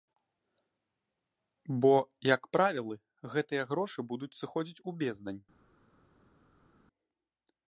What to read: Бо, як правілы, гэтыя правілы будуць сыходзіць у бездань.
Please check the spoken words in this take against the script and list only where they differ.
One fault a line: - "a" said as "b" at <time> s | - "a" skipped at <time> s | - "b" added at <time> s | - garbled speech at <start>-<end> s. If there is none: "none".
- "правілы" said as "грошы" at 3.7 s